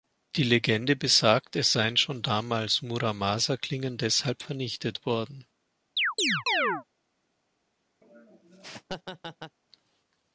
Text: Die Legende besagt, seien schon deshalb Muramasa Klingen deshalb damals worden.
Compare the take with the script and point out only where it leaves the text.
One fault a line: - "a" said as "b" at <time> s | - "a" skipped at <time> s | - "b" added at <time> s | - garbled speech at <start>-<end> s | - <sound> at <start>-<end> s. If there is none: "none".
- "es" added at 1.6 s
- "deshalb" said as "damals" at 2.2 s
- "damals" said as "vernichtet" at 4.4 s
- chirp at 6.0-6.8 s
- laugh at 8.0-9.6 s